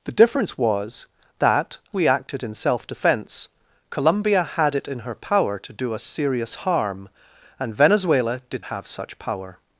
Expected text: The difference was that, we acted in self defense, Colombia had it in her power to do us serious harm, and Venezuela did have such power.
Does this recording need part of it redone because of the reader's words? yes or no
no